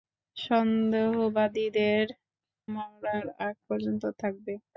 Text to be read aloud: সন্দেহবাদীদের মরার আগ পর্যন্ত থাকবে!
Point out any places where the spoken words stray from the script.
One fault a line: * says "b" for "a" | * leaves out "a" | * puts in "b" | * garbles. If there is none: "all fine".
all fine